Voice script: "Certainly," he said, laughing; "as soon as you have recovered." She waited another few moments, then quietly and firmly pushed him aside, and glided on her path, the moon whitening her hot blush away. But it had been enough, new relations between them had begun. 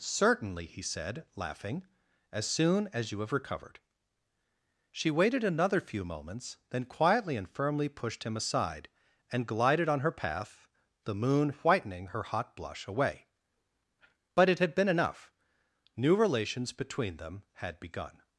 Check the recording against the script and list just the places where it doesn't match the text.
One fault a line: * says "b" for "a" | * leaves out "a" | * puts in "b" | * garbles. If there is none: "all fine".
all fine